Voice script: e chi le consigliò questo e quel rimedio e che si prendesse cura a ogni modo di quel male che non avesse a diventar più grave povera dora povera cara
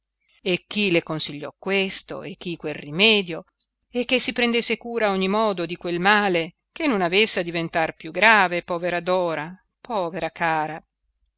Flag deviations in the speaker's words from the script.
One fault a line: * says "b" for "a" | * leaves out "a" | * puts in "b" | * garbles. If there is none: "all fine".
* puts in "chi"